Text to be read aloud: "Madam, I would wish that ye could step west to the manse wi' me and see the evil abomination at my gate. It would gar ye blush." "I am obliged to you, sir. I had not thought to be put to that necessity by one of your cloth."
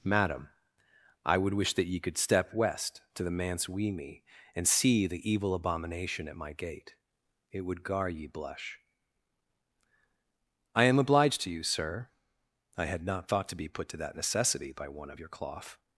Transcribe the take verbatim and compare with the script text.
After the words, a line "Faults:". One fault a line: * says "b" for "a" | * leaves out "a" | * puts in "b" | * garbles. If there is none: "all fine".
"Madam, I would wish that ye could step west to the manse wi' me and see the evil abomination at my gate. It would gar ye blush." "I am obliged to you, sir. I had not thought to be put to that necessity by one of your cloth."
Faults:
all fine